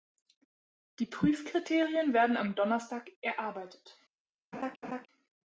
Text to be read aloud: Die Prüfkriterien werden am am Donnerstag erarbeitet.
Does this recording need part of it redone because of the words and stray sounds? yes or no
yes